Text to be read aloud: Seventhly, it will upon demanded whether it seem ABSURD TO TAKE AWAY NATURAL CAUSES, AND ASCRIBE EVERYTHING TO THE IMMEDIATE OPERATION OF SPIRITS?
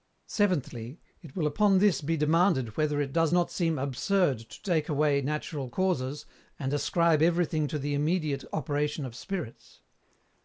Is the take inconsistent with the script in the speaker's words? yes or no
yes